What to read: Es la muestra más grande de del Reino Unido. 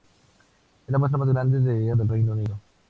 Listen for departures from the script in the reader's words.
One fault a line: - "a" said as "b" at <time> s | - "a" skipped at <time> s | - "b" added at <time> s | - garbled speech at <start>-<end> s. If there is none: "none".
none